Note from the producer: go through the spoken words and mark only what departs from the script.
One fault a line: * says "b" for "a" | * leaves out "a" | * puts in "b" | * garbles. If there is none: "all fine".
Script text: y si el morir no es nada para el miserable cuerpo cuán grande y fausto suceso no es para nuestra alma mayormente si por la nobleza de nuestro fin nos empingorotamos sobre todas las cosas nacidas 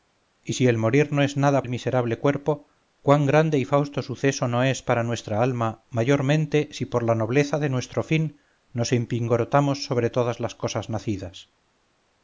* leaves out "para"